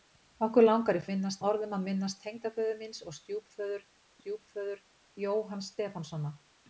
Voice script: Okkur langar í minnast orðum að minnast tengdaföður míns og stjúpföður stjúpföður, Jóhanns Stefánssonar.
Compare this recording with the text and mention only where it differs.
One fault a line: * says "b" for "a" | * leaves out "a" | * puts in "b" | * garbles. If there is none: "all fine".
all fine